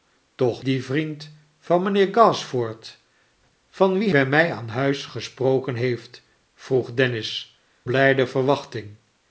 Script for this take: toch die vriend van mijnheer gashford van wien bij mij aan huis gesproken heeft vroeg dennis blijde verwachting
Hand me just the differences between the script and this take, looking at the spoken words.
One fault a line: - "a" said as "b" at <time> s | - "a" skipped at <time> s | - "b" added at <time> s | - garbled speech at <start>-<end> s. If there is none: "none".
none